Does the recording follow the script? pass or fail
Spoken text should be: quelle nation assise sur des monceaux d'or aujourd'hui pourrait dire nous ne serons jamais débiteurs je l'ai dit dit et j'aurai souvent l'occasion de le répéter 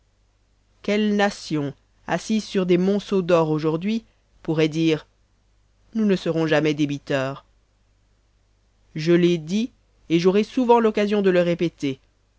fail